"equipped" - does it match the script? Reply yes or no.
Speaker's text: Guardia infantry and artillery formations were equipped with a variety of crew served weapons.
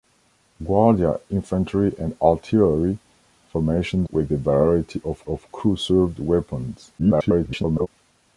no